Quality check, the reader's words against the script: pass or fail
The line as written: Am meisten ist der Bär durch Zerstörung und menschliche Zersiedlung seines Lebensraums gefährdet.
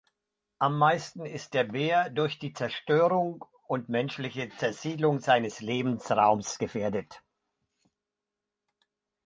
fail